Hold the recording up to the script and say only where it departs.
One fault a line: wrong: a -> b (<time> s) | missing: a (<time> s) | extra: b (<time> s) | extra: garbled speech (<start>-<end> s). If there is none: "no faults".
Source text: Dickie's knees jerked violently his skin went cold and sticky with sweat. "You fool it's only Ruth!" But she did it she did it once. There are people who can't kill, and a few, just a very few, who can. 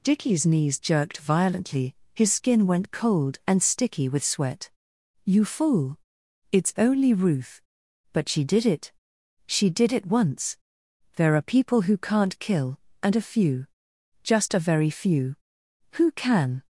no faults